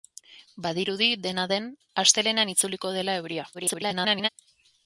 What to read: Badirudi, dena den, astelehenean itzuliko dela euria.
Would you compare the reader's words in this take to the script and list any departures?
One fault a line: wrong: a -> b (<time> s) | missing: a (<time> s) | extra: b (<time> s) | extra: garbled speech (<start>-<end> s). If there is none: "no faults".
extra: garbled speech (3.5-4.3 s)